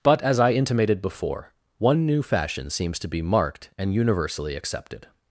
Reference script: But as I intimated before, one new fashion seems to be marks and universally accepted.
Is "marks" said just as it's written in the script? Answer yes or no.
no